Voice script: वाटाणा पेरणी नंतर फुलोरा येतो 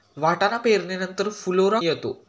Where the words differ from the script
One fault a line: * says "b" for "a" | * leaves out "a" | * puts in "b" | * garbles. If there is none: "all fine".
all fine